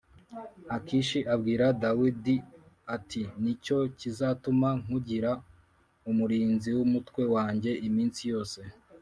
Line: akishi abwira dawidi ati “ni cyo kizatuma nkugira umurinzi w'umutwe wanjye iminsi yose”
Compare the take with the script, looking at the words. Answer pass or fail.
pass